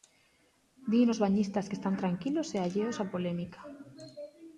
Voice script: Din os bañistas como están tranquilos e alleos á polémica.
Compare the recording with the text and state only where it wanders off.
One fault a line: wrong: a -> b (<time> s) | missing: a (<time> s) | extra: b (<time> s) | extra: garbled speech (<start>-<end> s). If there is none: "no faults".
wrong: como -> que (1.7 s)